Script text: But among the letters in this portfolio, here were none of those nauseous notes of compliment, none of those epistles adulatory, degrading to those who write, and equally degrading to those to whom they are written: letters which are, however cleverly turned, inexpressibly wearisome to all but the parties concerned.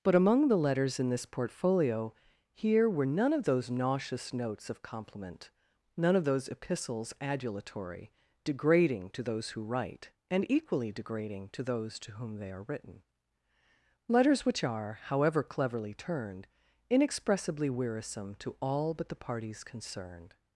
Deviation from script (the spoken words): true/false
false